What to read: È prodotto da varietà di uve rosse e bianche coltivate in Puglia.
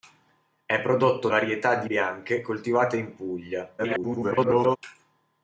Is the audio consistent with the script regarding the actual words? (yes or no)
no